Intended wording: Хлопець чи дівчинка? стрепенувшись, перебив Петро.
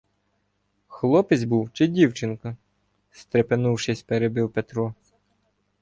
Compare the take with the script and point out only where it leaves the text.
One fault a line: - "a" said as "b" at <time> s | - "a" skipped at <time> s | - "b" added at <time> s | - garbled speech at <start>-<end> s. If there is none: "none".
- "був" added at 1.4 s